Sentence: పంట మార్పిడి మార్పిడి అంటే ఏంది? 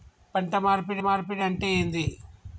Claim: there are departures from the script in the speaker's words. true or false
false